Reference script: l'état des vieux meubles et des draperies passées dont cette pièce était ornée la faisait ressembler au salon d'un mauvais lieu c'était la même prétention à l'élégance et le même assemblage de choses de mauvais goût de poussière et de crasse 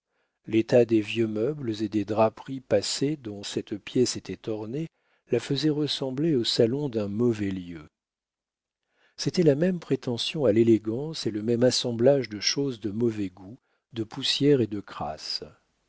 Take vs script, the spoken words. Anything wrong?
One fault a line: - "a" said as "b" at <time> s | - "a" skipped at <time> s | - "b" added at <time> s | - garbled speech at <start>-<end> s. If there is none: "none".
none